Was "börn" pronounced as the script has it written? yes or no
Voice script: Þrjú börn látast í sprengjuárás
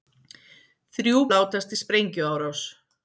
no